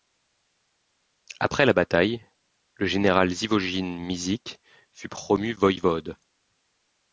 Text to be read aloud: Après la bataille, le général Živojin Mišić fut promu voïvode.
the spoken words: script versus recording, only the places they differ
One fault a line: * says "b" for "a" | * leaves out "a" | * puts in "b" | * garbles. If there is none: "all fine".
all fine